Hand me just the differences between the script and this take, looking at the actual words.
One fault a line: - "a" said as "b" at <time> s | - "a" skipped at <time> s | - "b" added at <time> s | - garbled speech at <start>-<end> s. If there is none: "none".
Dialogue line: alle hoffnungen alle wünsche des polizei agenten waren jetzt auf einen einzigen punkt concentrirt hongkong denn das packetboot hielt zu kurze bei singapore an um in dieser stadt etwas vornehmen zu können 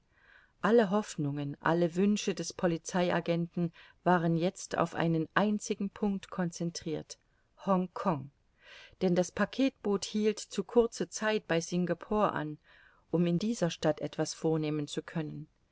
- "zeit" added at 11.1 s